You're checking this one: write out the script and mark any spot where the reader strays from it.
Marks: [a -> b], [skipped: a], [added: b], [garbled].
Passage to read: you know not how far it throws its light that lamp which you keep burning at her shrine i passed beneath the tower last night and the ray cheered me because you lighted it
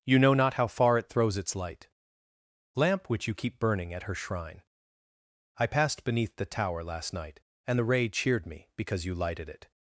you know not how far it throws its light [skipped: that] lamp which you keep burning at her shrine i passed beneath the tower last night and the ray cheered me because you lighted it